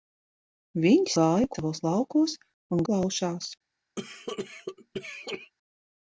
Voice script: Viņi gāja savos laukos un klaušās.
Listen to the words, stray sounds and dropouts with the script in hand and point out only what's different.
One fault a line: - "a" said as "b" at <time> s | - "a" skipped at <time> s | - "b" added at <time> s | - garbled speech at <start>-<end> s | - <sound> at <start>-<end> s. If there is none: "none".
- cough at 4.0-5.5 s